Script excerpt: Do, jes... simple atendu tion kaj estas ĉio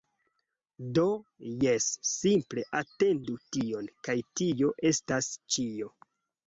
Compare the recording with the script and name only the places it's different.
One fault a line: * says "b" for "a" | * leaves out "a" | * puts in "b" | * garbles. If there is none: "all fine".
* puts in "tio"